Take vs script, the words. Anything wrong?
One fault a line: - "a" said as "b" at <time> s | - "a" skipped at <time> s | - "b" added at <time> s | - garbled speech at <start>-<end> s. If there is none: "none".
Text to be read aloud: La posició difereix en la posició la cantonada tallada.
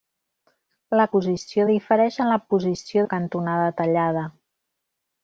none